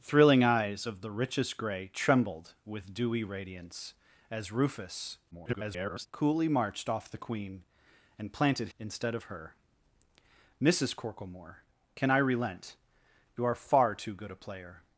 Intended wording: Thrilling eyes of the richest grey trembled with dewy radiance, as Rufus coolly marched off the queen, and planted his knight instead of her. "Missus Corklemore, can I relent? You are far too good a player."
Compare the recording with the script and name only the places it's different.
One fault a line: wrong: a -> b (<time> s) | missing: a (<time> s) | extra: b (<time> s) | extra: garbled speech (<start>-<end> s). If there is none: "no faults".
extra: garbled speech (5.3-6.1 s)
missing: his knight (8.7 s)